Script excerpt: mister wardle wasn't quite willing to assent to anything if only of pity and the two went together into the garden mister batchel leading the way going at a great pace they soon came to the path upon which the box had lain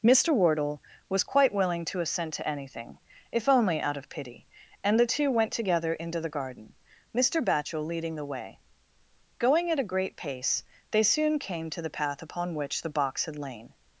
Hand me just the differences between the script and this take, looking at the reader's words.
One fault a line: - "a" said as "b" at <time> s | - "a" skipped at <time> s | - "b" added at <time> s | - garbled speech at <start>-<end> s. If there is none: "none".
- "wasn't" said as "was" at 1.1 s
- "out" added at 3.8 s